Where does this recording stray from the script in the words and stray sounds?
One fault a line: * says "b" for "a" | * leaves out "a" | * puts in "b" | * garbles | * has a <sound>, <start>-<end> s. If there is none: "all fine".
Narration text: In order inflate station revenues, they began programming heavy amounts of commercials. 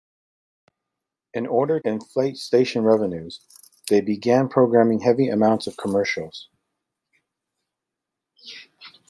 all fine